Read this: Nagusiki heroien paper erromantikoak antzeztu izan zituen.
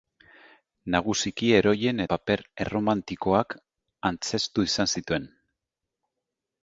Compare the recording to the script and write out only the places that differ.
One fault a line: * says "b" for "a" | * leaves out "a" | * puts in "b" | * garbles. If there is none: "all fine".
all fine